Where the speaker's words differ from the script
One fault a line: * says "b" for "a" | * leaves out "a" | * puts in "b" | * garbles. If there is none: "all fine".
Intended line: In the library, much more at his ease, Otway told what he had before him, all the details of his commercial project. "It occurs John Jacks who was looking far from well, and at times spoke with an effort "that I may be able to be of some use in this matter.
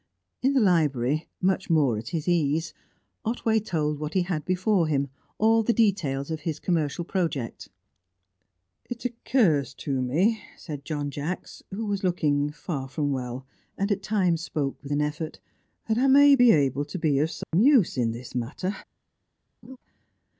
* puts in "to me said"